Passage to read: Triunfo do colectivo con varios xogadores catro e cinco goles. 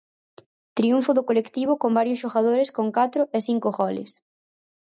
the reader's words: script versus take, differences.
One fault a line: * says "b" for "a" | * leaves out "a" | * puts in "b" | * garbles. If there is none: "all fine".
* puts in "con"